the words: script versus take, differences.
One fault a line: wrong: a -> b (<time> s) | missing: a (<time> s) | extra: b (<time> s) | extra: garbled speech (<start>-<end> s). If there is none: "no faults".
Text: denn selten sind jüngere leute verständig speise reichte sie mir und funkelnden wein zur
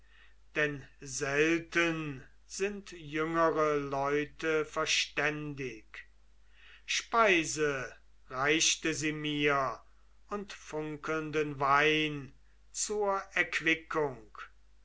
no faults